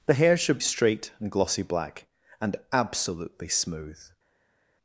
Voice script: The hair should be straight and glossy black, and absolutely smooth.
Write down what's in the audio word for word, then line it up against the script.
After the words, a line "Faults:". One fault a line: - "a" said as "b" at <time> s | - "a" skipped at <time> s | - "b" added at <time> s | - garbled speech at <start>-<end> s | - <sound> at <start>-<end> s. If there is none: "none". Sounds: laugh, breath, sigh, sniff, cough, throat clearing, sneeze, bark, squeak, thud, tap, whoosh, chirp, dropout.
The hair should straight and glossy black, and absolutely smooth.
Faults:
- "be" skipped at 0.6 s